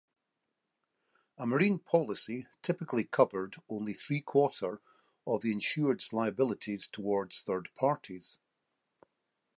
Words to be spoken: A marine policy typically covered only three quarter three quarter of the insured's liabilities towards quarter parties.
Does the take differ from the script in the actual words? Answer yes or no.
yes